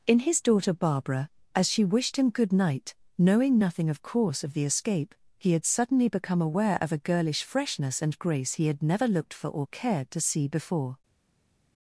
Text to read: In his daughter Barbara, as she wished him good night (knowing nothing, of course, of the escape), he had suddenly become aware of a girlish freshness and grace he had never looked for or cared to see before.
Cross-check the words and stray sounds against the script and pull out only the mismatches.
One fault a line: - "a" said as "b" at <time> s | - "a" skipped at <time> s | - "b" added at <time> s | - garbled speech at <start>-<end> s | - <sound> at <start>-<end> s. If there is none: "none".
none